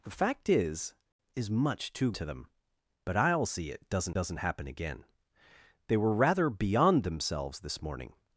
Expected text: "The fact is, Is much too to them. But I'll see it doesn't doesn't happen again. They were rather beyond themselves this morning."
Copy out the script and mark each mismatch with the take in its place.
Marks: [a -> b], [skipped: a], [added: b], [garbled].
"The fact is, Is much too to them. But I'll see it doesn't doesn't happen again. They were rather beyond themselves this morning."